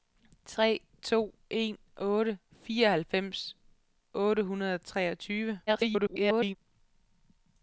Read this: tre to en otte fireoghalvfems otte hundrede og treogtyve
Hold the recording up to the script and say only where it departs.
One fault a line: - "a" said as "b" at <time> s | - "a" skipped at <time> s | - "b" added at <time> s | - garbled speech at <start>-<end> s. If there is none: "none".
- garbled speech at 5.7-6.6 s